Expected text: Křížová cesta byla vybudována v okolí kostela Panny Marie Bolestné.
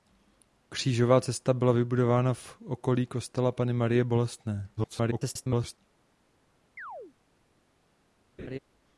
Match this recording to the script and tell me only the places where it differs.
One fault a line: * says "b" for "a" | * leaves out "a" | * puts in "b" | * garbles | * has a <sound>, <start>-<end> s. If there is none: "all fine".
* garbles
* has a chirp, 6.8-7.1 s
* has a laugh, 8.4-8.6 s